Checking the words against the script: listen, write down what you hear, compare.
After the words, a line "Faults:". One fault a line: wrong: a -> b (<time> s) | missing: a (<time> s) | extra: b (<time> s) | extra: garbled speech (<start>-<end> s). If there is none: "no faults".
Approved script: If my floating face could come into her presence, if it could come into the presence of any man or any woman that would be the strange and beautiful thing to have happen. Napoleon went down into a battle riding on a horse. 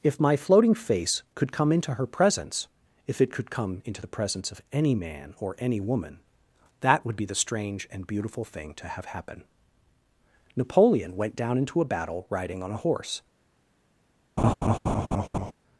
If my floating face could come into her presence, if it could come into the presence of any man or any woman that would be the strange and beautiful thing to have happen. Napoleon went down into a battle riding on a horse.
Faults:
no faults